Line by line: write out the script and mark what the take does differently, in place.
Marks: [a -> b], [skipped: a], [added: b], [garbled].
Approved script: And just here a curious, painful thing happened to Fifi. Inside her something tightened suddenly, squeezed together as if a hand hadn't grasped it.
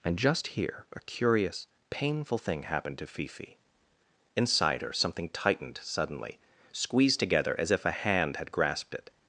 And just here a curious, painful thing happened to Fifi. Inside her something tightened suddenly, squeezed together as if a hand [hadn't -> had] grasped it.